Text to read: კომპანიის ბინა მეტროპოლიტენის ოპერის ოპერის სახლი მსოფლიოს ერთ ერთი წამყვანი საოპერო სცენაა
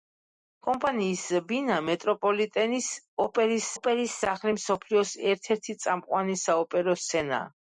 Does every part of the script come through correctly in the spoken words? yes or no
yes